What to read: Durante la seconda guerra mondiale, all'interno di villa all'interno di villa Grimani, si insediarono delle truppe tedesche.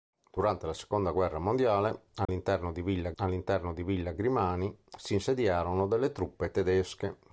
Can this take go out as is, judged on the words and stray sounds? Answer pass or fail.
fail